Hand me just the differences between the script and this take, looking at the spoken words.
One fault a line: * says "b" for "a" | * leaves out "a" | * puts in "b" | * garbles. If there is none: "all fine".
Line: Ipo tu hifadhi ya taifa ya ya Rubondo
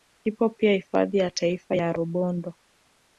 * says "pia" for "tu"
* leaves out "ya"